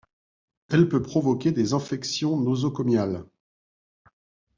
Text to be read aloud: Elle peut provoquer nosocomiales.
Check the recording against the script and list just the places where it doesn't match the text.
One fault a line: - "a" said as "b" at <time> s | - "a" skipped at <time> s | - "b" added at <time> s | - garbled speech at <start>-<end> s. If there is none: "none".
- "des infections" added at 1.5 s